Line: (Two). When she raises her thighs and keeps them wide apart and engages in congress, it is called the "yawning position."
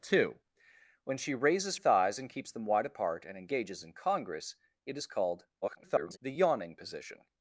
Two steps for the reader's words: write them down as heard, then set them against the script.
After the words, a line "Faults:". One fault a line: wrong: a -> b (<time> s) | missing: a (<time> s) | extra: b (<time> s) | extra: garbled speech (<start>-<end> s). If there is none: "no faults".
(Two). When she raises thighs and keeps them wide apart and engages in congress, it is called [garbled] the "yawning position."
Faults:
missing: her (1.8 s)
extra: garbled speech (5.6-6.2 s)